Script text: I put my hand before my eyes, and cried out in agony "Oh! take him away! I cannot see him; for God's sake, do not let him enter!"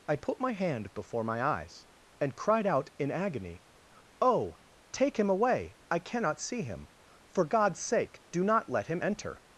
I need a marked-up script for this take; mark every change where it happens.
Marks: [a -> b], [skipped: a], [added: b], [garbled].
I put my hand before my eyes, and cried out in agony "Oh! take him away! I cannot see him; for God's sake, do not let him enter!"